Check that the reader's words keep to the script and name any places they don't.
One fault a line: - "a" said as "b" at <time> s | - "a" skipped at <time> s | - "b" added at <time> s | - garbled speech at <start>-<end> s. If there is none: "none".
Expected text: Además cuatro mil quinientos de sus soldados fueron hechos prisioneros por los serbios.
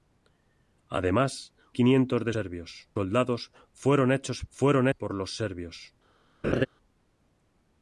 - "cuatro mil" skipped at 1.5 s
- "sus" said as "serbios" at 2.3 s
- "prisioneros" said as "fueron" at 4.5 s